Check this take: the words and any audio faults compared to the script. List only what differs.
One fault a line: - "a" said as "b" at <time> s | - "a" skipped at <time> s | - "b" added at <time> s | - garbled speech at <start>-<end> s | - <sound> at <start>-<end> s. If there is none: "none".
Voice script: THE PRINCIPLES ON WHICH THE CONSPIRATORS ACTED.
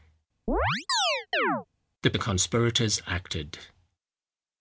- chirp at 0.5-1.7 s
- "PRINCIPLES ON WHICH" skipped at 2.1 s